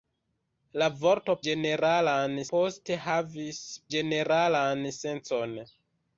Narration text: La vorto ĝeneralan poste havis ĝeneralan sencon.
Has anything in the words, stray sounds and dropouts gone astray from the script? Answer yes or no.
no